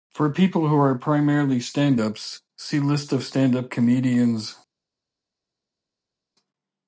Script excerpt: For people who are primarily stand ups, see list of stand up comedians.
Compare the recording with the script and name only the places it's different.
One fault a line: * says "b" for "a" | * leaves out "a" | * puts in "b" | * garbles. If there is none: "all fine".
all fine